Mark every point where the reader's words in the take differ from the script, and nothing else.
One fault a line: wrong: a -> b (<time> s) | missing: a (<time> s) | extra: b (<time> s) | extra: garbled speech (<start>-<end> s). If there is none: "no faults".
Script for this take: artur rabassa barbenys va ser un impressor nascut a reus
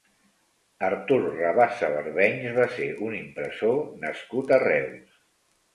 no faults